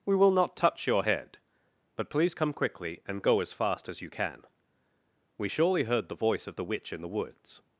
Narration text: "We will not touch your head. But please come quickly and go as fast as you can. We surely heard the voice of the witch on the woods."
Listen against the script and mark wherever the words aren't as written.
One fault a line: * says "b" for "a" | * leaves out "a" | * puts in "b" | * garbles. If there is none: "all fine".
* says "in" for "on"